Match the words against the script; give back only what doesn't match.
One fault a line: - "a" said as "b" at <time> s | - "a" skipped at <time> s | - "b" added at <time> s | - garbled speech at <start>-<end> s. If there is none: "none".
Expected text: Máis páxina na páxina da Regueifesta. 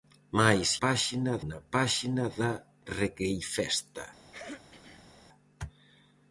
none